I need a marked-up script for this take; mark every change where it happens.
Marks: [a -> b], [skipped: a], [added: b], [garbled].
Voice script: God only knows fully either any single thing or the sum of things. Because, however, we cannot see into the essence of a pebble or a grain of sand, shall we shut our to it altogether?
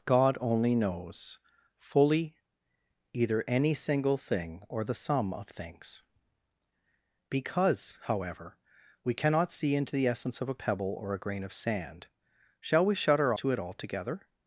God only knows fully either any single thing or the sum of things. Because, however, we cannot see into the essence of a pebble or a grain of sand, shall we shut our to it altogether?